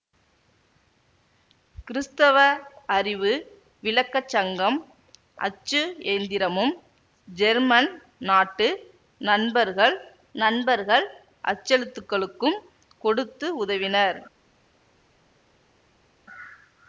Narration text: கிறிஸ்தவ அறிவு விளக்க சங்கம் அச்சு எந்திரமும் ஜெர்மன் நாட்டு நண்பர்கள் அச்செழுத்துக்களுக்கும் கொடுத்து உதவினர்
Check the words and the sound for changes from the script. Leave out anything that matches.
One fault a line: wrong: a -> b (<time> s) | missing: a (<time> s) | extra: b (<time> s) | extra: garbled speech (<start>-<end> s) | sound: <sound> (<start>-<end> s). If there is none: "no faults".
extra: நண்பர்கள் (10.4 s)